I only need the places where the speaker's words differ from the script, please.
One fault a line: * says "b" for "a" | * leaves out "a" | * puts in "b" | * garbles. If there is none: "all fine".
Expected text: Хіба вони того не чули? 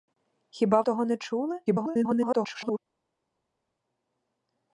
* leaves out "вони"
* garbles